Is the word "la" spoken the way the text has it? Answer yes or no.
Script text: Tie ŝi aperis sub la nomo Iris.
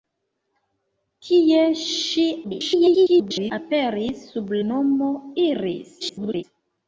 no